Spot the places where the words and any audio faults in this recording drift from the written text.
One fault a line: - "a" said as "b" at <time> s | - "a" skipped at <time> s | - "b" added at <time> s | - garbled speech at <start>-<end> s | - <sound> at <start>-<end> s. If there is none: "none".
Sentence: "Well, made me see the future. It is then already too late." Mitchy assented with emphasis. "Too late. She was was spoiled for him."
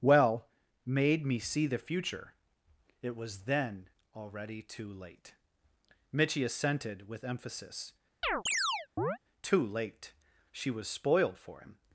- "is" said as "was" at 3.1 s
- chirp at 8.2-9.2 s
- "was" skipped at 10.9 s